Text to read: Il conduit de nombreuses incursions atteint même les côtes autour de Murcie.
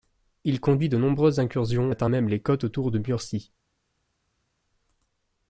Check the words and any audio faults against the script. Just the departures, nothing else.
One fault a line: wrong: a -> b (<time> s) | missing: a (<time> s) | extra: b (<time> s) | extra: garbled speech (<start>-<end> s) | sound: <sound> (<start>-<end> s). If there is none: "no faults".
no faults